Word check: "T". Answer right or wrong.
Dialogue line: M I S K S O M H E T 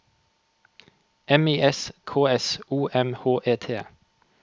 right